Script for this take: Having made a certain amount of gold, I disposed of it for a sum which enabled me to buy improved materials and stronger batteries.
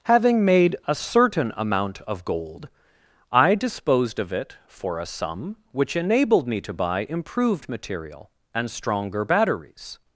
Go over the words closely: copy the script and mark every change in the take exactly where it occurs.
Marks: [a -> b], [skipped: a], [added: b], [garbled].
Having made a certain amount of gold, I disposed of it for a sum which enabled me to buy improved [materials -> material] and stronger batteries.